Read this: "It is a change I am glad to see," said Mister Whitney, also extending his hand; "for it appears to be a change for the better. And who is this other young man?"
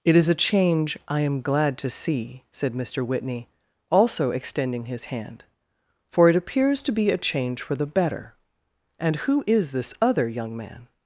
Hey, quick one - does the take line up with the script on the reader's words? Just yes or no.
yes